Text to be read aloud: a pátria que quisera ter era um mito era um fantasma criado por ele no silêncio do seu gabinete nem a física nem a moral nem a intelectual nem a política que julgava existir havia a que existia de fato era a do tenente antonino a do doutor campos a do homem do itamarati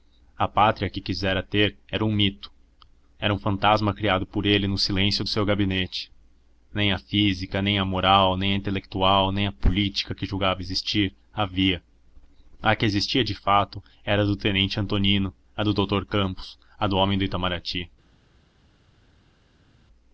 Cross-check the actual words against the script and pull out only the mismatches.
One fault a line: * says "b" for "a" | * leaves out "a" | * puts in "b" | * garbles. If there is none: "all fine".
all fine